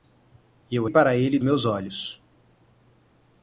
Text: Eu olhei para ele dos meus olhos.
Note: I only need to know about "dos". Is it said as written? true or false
false